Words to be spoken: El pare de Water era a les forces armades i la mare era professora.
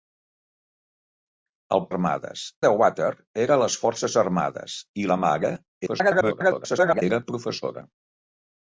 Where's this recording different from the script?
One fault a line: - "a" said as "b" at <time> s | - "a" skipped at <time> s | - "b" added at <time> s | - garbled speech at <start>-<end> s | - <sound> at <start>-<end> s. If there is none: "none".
- "pare" said as "armades" at 1.9 s
- garbled speech at 5.9-7.0 s